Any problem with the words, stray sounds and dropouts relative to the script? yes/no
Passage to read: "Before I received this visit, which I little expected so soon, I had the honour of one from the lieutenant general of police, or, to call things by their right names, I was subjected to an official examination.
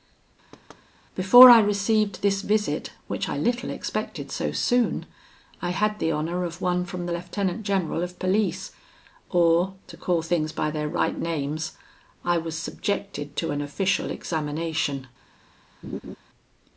yes